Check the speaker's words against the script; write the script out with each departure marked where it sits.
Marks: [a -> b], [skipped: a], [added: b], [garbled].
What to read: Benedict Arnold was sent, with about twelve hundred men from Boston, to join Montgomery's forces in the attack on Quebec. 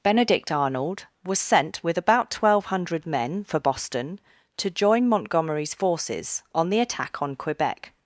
Benedict Arnold was sent, with about twelve hundred men [from -> for] Boston, to join Montgomery's forces [in -> on] the attack on Quebec.